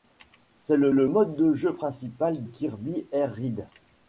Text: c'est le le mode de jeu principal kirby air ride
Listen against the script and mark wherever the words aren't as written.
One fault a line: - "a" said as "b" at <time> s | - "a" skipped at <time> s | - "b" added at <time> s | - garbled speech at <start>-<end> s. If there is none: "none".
none